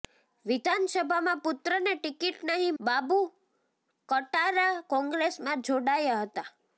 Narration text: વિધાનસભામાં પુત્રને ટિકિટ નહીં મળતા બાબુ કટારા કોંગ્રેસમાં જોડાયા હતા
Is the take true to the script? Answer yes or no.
no